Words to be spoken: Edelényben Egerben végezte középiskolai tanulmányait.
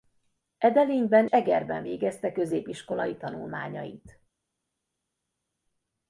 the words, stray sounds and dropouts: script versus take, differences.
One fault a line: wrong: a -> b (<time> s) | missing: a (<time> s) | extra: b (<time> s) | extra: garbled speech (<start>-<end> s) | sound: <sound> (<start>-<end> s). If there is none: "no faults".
no faults